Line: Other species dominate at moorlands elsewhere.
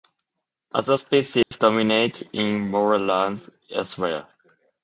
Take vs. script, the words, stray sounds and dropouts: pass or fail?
fail